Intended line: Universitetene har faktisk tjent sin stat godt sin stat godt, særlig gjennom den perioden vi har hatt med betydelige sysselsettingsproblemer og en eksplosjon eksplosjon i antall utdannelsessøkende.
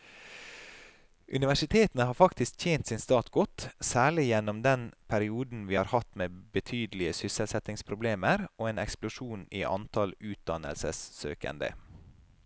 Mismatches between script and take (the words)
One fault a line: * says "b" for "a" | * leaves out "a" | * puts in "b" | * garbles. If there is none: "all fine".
* leaves out "sin stat godt"
* leaves out "eksplosjon"